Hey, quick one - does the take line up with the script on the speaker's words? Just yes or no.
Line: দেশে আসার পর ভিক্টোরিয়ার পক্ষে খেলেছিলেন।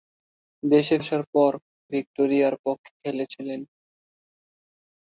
yes